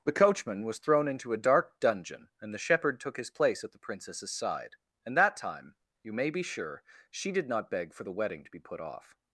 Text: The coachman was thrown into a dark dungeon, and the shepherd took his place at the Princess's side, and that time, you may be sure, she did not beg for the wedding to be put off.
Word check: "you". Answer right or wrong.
right